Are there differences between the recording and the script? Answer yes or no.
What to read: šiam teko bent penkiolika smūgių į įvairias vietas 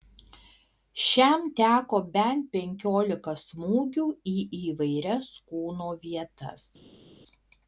yes